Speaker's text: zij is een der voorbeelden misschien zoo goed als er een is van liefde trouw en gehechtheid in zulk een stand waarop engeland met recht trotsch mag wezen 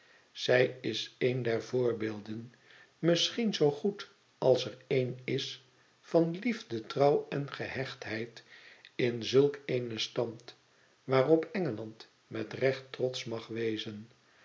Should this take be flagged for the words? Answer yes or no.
no